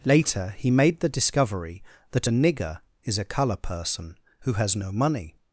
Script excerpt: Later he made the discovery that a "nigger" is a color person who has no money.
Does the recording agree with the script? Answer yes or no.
yes